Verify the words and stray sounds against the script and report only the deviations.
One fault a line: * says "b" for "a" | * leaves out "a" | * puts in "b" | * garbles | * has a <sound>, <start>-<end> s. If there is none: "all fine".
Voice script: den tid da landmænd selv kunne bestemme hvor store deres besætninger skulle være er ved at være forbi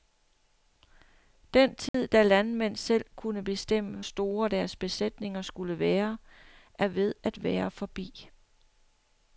* has a dropout, 1.9-1.9 s
* leaves out "hvor"